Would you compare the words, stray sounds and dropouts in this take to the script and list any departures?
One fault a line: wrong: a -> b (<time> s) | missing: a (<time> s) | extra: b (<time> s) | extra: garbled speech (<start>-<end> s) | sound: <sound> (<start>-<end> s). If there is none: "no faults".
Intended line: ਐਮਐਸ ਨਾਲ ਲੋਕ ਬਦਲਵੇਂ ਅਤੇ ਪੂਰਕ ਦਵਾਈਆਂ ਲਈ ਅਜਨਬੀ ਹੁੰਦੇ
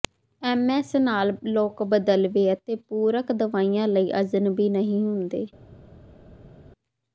extra: ਨਹੀਂ (4.7 s)